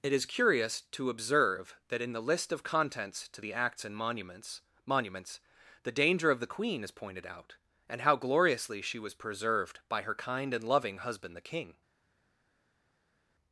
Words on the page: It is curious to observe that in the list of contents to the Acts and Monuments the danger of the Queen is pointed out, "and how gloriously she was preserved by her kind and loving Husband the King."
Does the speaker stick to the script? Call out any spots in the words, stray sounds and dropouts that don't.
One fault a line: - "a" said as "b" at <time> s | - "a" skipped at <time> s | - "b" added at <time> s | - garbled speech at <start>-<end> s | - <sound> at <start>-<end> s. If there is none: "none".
- "Monuments" added at 4.9 s